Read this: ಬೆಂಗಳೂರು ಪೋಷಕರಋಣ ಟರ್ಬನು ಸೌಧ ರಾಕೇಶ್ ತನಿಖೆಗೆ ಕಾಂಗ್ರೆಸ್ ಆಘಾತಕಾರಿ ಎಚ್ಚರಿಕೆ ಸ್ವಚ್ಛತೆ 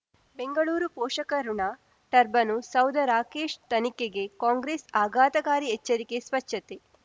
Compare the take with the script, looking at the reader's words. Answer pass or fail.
pass